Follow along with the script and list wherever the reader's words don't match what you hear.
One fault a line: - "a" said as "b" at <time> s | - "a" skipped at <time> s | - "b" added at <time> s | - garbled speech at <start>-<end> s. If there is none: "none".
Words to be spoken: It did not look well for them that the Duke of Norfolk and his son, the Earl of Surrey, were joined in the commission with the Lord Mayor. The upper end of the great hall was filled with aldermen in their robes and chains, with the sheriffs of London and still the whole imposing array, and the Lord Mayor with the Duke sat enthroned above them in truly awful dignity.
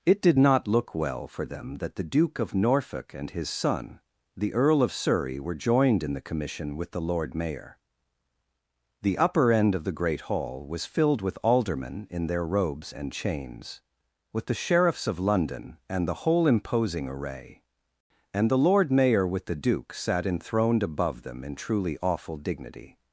- "still" skipped at 16.1 s